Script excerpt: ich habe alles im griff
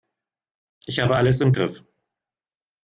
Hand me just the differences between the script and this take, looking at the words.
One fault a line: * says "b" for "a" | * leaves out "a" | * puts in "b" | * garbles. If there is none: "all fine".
all fine